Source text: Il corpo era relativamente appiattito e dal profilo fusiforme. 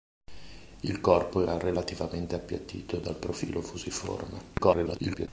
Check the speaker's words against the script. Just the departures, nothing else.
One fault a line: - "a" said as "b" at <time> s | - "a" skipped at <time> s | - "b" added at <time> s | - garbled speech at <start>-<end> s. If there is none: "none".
- garbled speech at 4.6-5.3 s